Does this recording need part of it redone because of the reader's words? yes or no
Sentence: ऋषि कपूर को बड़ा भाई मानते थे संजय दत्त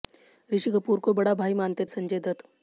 yes